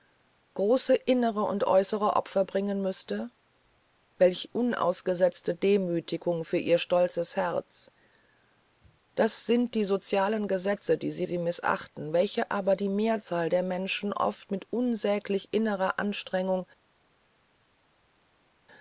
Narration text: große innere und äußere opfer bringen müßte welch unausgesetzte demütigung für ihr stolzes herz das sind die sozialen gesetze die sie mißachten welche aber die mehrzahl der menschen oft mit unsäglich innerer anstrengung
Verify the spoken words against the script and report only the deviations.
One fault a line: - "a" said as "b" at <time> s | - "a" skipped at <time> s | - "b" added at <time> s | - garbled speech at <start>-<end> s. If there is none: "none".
- "sie" added at 11.2 s